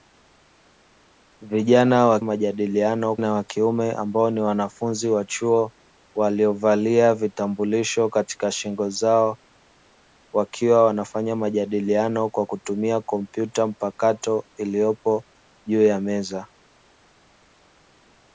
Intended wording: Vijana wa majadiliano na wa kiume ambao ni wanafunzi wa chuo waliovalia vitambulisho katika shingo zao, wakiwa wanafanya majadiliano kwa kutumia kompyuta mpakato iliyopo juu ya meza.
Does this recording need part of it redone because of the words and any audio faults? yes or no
no